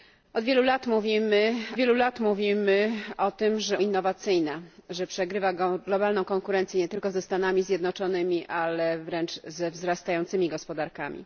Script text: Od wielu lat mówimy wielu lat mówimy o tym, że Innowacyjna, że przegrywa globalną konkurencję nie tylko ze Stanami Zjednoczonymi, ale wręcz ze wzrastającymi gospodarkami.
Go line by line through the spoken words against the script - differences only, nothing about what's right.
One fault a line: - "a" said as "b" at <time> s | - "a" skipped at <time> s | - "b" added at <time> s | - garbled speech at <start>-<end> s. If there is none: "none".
none